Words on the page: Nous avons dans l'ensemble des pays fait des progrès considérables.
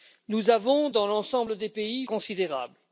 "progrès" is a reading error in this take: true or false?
true